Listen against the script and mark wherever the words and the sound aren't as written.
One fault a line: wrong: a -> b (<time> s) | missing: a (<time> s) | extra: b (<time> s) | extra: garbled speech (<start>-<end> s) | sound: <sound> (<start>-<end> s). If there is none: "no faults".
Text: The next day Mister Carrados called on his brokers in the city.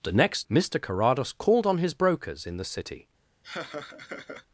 missing: day (0.5 s)
sound: laugh (3.4-4.5 s)